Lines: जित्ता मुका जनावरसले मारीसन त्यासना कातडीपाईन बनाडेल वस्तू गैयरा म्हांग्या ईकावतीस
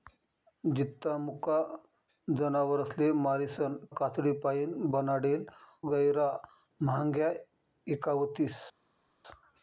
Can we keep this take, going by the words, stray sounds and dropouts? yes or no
no